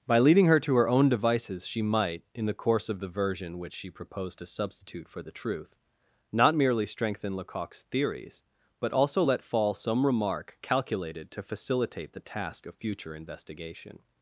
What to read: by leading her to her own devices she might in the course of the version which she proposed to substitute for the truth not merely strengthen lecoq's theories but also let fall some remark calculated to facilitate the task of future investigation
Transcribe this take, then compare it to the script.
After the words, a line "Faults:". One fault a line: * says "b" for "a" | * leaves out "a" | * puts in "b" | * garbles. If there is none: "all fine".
by leading her to her own devices she might in the course of the version which she proposed to substitute for the truth not merely strengthen lecoq's theories but also let fall some remark calculated to facilitate the task of future investigation
Faults:
all fine